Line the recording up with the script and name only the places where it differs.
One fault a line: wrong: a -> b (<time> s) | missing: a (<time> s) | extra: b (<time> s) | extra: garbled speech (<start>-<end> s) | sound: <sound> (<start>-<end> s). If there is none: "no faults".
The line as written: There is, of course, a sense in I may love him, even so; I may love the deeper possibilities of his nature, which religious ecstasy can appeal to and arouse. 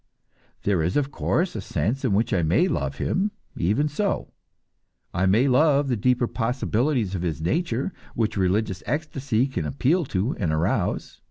extra: which (2.1 s)